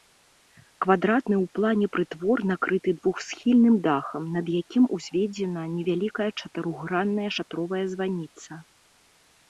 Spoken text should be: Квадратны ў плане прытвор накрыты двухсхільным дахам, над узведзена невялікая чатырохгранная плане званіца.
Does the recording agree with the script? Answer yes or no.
no